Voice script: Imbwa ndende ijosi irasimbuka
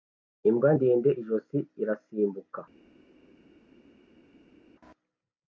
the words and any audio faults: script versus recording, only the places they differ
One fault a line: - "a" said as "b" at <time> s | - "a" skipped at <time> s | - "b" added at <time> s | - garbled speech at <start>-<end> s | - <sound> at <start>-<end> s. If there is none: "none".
none